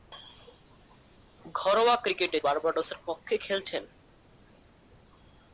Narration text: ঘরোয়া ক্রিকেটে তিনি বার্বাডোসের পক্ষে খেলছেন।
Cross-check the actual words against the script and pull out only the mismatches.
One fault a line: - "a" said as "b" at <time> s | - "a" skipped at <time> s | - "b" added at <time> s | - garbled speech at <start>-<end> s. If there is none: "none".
- "তিনি" skipped at 2.4 s